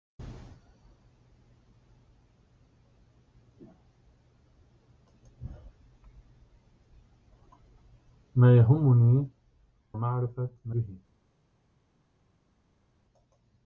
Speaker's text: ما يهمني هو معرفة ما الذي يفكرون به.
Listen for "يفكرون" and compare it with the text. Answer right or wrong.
wrong